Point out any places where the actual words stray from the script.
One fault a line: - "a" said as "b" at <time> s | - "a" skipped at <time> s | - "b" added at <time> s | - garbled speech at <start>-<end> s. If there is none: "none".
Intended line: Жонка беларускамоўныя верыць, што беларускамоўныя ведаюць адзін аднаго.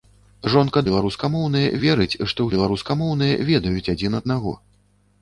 none